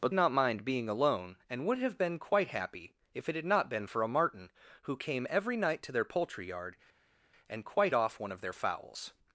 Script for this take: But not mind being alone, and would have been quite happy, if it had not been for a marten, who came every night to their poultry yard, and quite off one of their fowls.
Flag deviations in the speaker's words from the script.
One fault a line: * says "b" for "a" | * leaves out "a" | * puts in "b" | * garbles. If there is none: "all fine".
all fine